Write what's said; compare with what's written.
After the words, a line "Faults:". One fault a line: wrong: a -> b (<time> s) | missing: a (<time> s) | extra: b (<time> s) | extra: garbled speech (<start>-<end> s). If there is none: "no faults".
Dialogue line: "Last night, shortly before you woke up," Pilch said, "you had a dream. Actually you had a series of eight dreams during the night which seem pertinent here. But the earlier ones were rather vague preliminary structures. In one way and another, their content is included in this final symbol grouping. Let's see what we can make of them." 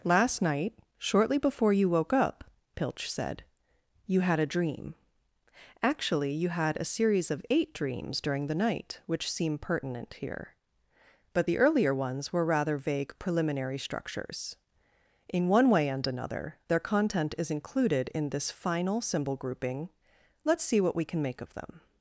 "Last night, shortly before you woke up," Pilch said, "you had a dream. Actually you had a series of eight dreams during the night which seem pertinent here. But the earlier ones were rather vague preliminary structures. In one way and another, their content is included in this final symbol grouping. Let's see what we can make of them."
Faults:
no faults